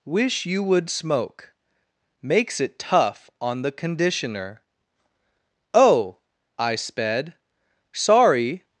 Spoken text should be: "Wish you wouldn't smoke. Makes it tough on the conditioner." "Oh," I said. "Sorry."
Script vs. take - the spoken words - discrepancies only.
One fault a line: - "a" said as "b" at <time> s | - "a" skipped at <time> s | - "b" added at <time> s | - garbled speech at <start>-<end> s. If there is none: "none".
- "wouldn't" said as "would" at 0.6 s
- "said" said as "sped" at 6.8 s